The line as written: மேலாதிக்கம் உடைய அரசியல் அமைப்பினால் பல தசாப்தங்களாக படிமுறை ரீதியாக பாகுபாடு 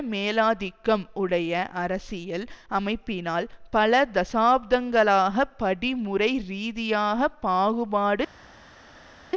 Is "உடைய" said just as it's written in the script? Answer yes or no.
yes